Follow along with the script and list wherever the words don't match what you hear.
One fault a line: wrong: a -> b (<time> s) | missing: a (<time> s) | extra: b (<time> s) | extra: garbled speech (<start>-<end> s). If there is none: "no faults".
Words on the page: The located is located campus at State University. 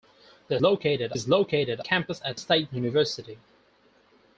no faults